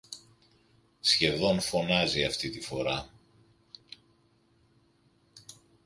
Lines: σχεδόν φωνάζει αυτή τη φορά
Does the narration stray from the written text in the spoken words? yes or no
no